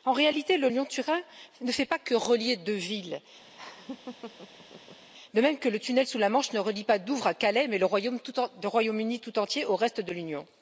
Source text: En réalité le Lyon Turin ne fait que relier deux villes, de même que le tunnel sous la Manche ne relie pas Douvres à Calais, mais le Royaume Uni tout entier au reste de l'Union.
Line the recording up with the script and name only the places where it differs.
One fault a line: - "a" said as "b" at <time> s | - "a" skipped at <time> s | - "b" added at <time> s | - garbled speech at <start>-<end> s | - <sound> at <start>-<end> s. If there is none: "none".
- "pas" added at 1.8 s
- laugh at 3.5-5.1 s